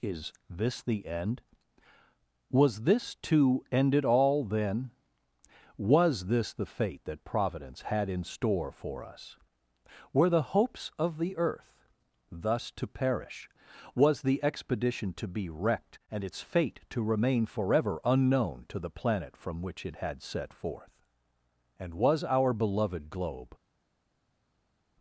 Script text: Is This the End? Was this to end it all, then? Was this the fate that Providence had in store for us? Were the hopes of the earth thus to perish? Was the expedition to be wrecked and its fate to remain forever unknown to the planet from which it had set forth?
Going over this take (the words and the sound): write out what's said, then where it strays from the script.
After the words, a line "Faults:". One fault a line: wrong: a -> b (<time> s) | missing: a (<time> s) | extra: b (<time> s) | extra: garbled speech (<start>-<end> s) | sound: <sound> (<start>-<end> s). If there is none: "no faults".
Is This the End? Was this to end it all, then? Was this the fate that Providence had in store for us? Were the hopes of the earth thus to perish? Was the expedition to be wrecked and its fate to remain forever unknown to the planet from which it had set forth? And was our beloved globe
Faults:
extra: And was our beloved globe (21.8 s)